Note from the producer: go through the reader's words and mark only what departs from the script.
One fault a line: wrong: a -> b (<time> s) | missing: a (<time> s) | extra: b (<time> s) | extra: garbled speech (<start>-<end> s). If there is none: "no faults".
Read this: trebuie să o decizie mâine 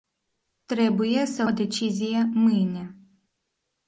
no faults